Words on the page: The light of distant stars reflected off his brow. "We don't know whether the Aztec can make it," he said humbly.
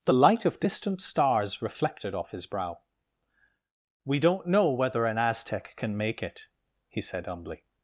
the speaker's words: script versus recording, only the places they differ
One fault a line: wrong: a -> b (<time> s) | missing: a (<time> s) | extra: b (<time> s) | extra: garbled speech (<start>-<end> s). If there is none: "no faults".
wrong: the -> an (5.1 s)